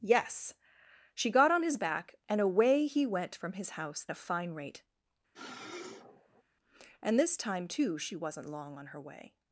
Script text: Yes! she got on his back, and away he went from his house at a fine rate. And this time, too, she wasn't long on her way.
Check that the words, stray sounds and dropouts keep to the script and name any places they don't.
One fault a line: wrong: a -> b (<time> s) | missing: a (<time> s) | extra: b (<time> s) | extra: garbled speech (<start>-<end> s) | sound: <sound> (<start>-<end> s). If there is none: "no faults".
missing: at (4.1 s)
sound: sniff (5.3-6.4 s)